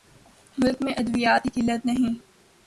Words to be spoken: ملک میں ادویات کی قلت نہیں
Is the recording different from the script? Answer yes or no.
no